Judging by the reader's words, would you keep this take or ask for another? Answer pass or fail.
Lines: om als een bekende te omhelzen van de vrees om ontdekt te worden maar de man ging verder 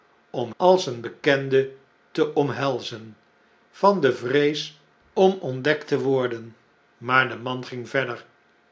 pass